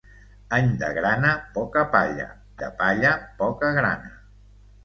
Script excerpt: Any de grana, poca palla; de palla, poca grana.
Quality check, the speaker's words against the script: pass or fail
pass